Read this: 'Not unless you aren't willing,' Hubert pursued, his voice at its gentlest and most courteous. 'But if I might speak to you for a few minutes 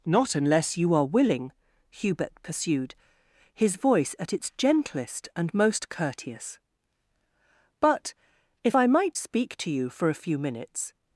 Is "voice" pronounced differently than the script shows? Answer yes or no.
no